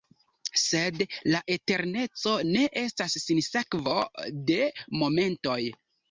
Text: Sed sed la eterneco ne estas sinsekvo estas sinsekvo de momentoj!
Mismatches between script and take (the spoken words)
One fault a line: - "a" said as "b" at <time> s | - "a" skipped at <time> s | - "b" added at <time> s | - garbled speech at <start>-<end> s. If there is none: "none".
- "sed" skipped at 1.0 s
- "estas sinsekvo" skipped at 3.9 s